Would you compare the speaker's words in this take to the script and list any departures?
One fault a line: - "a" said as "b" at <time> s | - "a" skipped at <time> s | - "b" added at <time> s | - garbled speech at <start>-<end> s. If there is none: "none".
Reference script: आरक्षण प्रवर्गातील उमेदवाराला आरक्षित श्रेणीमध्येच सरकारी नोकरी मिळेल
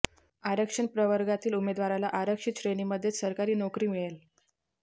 none